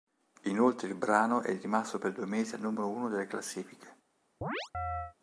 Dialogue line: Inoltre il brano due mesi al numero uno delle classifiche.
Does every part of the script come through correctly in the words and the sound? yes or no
no